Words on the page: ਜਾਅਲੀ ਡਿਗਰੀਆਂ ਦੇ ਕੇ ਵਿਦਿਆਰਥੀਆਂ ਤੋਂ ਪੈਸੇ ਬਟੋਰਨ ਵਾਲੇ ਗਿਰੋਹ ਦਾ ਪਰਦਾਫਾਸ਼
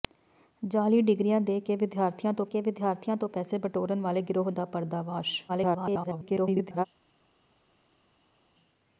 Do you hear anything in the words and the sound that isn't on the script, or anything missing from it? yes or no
yes